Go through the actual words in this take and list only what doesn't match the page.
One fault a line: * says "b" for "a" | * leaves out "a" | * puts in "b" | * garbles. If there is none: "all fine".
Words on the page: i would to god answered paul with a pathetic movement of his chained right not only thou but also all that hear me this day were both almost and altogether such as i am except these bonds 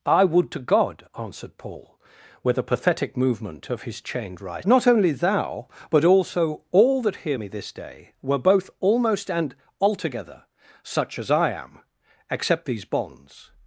all fine